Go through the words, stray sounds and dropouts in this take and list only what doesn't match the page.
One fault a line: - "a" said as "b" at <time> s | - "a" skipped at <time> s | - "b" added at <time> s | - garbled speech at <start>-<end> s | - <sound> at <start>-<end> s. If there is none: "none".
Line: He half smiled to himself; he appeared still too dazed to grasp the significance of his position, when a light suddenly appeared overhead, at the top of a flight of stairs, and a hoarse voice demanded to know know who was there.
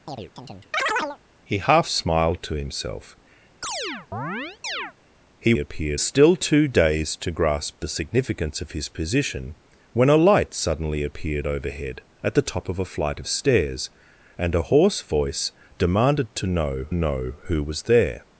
- chirp at 0.1-1.2 s
- chirp at 3.6-4.9 s